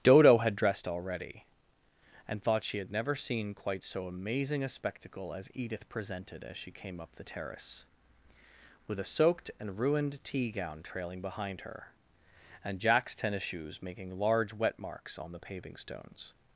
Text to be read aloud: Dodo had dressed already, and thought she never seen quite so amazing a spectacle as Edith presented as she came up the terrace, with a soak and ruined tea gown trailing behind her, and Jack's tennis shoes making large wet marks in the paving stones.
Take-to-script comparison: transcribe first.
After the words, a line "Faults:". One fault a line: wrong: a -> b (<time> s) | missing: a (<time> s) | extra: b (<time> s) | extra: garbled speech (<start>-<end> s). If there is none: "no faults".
Dodo had dressed already, and thought she had never seen quite so amazing a spectacle as Edith presented as she came up the terrace, with a soaked and ruined tea gown trailing behind her, and Jack's tennis shoes making large wet marks on the paving stones.
Faults:
extra: had (2.8 s)
wrong: soak -> soaked (9.1 s)
wrong: in -> on (15.2 s)